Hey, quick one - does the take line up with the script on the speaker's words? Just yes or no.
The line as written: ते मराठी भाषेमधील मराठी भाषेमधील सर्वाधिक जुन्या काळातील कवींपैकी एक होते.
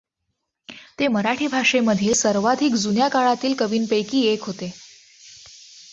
no